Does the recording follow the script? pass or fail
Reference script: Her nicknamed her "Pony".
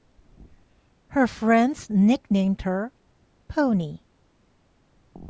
fail